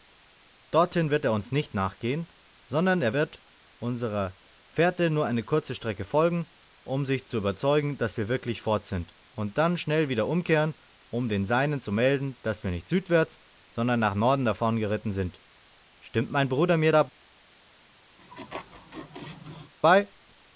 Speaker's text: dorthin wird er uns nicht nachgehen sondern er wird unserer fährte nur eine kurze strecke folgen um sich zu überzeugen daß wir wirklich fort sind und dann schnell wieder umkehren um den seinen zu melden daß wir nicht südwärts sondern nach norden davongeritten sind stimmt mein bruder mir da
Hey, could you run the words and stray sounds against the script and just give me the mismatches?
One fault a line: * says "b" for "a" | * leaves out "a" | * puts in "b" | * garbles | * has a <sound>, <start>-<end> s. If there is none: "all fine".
* has a laugh, 18.2-19.7 s